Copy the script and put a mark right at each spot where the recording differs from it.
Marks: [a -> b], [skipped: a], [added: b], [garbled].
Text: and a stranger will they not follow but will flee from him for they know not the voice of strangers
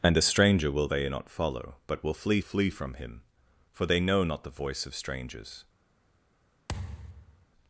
and a stranger will they not follow but will flee [added: flee] from him for they know not the voice of strangers